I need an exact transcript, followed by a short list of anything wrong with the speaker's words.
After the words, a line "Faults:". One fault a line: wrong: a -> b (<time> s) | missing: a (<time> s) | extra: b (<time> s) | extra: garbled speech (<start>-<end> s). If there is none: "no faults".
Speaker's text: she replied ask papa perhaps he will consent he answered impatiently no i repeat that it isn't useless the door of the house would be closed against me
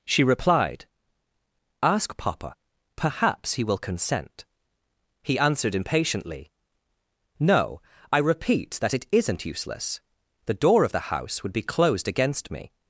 she replied ask papa perhaps he will consent he answered impatiently no i repeat that it isn't useless the door of the house would be closed against me
Faults:
no faults